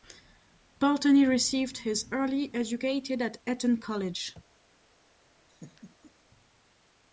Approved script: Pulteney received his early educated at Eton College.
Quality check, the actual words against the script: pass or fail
pass